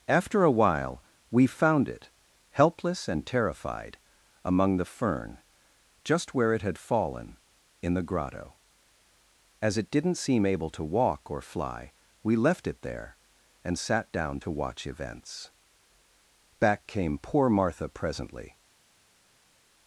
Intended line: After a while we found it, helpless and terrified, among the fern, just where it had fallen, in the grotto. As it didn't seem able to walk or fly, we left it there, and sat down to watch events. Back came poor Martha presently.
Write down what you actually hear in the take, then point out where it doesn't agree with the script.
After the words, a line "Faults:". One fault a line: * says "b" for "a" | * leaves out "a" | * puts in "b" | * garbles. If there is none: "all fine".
After a while we found it, helpless and terrified, among the fern, just where it had fallen, in the grotto. As it didn't seem able to walk or fly, we left it there, and sat down to watch events. Back came poor Martha presently.
Faults:
all fine